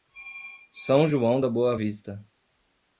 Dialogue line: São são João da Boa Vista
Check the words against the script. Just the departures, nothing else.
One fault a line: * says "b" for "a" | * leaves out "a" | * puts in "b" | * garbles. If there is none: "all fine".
* leaves out "são"